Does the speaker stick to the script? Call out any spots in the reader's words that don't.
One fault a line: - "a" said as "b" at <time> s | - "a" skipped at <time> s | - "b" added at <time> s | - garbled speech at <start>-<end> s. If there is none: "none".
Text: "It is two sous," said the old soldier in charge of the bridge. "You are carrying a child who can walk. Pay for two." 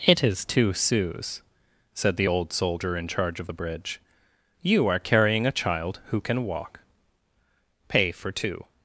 none